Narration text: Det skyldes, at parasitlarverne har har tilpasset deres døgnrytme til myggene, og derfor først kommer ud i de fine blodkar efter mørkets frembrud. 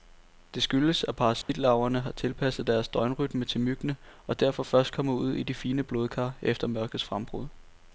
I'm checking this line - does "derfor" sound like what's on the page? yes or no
yes